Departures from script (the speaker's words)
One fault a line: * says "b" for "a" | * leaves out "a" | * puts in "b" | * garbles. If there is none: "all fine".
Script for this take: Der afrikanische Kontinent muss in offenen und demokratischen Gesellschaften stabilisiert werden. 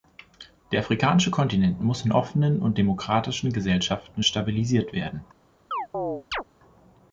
all fine